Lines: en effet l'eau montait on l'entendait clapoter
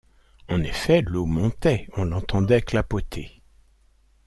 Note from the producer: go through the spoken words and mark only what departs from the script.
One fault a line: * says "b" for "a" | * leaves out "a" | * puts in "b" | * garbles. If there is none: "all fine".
all fine